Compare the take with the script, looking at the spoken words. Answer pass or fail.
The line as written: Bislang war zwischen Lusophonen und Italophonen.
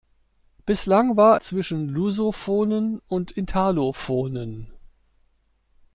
pass